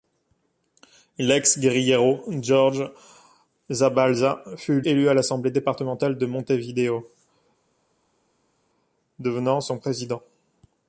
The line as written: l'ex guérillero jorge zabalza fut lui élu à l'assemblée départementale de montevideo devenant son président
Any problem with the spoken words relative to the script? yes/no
yes